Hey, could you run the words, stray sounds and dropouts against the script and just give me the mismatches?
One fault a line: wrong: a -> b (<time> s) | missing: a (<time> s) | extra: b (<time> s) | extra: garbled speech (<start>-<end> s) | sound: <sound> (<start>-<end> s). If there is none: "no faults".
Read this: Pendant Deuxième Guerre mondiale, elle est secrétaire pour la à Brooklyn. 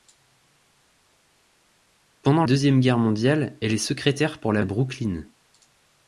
no faults